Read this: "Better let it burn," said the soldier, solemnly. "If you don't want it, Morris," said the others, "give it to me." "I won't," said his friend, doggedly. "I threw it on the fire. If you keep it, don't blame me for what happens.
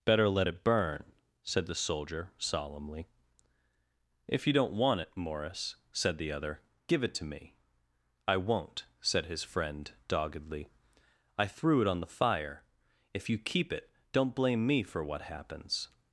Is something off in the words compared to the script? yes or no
yes